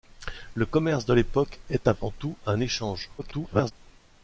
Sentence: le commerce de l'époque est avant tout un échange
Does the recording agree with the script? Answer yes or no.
no